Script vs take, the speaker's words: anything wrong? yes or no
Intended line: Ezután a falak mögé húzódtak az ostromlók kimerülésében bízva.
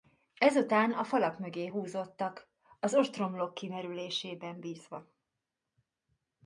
no